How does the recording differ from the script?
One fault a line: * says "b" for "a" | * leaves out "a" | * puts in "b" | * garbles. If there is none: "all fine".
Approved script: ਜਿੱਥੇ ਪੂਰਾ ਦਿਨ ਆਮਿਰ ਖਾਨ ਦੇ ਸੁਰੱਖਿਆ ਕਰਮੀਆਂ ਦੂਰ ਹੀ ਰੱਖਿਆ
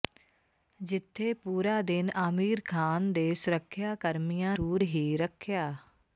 all fine